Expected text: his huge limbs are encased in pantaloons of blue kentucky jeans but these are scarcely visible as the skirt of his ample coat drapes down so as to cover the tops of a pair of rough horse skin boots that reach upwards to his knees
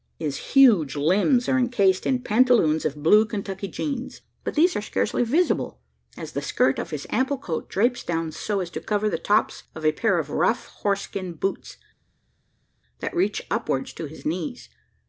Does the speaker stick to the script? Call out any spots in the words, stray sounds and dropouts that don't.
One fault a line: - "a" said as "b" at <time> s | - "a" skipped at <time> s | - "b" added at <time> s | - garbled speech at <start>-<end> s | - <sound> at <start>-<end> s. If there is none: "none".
none